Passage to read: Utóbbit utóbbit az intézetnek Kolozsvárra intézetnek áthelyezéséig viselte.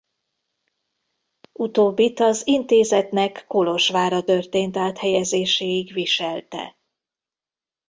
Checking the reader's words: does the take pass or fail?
fail